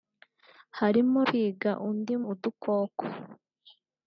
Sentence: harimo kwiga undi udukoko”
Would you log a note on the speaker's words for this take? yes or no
no